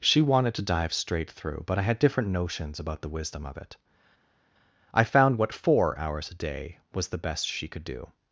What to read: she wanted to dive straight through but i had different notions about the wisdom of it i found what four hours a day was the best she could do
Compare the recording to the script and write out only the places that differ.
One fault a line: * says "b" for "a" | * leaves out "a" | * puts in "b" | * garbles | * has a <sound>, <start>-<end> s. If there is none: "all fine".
all fine